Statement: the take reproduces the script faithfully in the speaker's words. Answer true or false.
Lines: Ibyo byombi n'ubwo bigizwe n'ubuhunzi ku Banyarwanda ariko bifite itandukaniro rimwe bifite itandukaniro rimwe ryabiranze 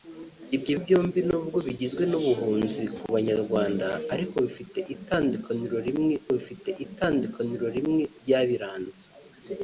true